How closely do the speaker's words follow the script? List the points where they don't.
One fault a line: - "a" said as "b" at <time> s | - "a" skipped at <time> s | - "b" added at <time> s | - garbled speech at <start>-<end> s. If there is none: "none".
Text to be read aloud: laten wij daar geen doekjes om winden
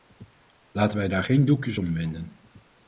none